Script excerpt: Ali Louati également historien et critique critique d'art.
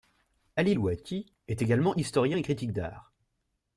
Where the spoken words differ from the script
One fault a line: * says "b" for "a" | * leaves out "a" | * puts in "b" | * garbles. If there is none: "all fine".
* puts in "est"
* leaves out "critique"